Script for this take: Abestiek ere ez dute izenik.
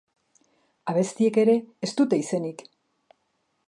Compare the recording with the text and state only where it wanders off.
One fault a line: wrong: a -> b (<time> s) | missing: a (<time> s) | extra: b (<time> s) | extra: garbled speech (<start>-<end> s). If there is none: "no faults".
no faults